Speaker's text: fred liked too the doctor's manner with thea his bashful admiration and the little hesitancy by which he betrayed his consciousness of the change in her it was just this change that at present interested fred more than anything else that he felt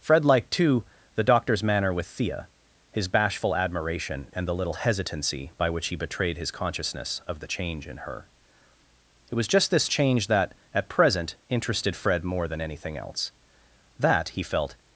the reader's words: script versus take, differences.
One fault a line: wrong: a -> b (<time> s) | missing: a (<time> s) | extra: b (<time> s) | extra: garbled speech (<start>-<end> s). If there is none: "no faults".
no faults